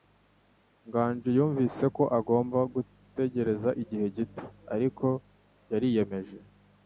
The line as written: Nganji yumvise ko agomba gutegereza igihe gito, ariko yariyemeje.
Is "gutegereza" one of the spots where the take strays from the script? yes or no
no